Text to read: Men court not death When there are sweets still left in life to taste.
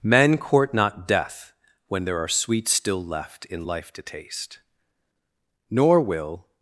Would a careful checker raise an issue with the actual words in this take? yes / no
yes